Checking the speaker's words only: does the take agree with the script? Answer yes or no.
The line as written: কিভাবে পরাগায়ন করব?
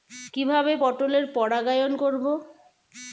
no